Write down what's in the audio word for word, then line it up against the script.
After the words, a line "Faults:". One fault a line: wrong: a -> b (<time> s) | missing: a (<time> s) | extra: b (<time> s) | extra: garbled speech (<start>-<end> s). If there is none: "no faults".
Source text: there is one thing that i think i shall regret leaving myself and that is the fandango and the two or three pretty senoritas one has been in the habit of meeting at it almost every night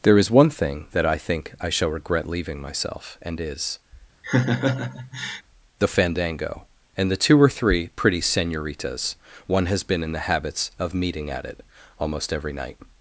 there is one thing that i think i shall regret leaving myself and is the fandango and the two or three pretty senoritas one has been in the habits of meeting at it almost every night
Faults:
missing: that (3.4 s)
wrong: habit -> habits (10.2 s)